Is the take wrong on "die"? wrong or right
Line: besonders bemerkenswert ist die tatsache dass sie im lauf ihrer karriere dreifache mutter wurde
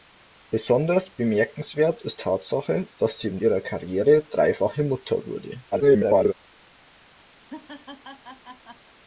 wrong